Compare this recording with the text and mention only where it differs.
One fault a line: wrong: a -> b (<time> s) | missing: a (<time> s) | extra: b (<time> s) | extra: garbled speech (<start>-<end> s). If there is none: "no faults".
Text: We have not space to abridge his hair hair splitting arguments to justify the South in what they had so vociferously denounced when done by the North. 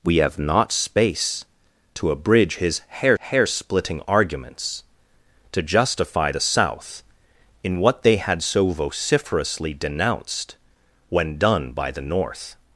no faults